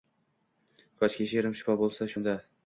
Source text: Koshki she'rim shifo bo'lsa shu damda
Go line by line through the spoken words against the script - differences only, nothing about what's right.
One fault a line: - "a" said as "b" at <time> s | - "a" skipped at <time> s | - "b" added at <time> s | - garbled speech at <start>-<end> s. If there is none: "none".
- "shu" skipped at 2.1 s